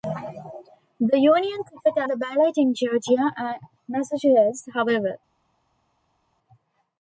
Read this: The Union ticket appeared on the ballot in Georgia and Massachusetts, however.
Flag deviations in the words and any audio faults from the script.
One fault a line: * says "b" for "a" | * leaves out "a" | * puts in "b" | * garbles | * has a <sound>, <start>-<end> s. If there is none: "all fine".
* leaves out "appeared on"